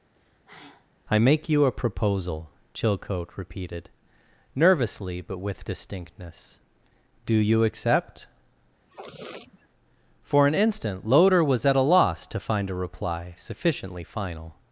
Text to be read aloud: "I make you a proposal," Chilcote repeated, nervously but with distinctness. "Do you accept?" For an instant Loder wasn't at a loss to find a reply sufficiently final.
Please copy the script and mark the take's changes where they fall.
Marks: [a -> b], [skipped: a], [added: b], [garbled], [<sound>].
[sigh] "I make you a proposal," Chilcote repeated, nervously but with distinctness. "Do you accept?" [sniff] For an instant Loder [wasn't -> was] at a loss to find a reply sufficiently final.